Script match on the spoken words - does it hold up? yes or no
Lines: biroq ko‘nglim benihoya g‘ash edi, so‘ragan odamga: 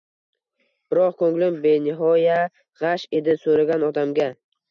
yes